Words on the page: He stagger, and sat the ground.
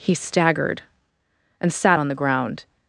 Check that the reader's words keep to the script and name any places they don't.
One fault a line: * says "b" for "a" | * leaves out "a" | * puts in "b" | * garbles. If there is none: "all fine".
* says "staggered" for "stagger"
* puts in "on"